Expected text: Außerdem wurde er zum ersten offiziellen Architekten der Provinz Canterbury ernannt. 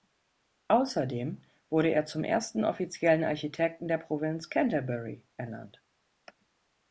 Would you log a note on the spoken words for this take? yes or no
no